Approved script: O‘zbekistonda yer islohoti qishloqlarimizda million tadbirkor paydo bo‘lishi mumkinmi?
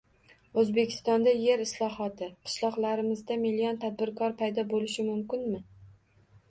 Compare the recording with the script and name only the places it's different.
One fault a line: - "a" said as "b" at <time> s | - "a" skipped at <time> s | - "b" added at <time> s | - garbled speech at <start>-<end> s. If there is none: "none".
none